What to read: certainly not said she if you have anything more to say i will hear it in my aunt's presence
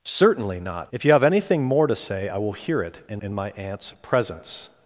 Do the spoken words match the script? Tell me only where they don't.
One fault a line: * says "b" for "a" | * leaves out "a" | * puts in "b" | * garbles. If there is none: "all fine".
* leaves out "said she"
* puts in "in"